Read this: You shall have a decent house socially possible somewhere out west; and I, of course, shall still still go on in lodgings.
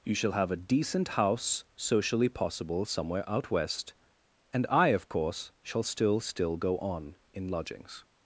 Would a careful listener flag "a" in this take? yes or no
no